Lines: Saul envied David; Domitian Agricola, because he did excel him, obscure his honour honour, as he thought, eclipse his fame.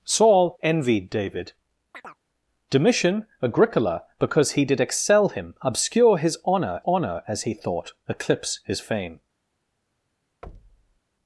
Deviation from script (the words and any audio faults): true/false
true